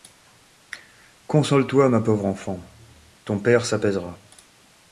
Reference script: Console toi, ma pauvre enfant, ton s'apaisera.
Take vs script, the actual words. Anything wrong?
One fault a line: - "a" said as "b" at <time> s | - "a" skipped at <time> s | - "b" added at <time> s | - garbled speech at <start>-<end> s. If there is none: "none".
- "père" added at 3.4 s